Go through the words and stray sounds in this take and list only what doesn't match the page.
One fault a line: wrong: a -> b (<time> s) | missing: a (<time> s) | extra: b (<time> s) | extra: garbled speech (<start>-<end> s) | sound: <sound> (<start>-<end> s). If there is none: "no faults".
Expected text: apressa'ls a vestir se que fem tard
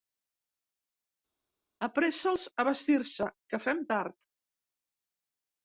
no faults